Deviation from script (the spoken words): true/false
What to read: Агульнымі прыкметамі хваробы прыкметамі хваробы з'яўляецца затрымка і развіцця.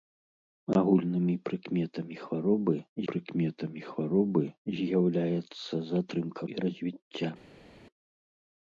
false